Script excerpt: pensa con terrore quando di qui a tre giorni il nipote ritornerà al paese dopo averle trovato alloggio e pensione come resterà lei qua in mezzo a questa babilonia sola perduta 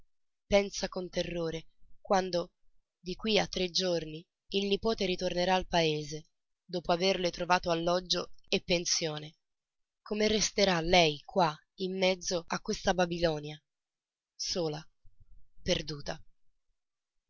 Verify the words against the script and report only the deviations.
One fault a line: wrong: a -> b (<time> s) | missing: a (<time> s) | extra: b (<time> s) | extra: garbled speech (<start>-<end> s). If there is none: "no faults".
no faults